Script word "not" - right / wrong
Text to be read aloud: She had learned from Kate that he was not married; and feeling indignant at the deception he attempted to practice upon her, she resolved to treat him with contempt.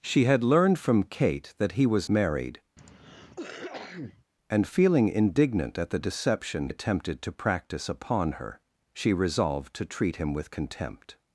wrong